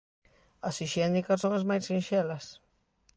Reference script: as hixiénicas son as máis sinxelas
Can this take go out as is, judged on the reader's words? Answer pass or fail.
pass